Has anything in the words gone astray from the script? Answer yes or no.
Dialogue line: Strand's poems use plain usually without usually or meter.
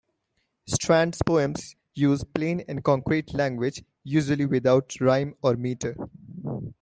yes